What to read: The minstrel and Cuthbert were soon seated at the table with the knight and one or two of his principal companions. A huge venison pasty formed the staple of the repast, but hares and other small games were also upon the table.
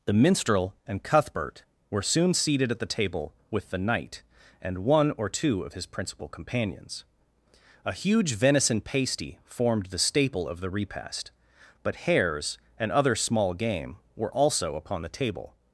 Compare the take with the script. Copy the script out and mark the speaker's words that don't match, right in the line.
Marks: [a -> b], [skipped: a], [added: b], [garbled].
The minstrel and Cuthbert were soon seated at the table with the knight and one or two of his principal companions. A huge venison pasty formed the staple of the repast, but hares and other small [games -> game] were also upon the table.